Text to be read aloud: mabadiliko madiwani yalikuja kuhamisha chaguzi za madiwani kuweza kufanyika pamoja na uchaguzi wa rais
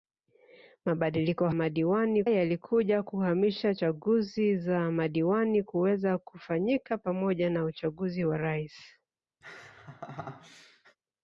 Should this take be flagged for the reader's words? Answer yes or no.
no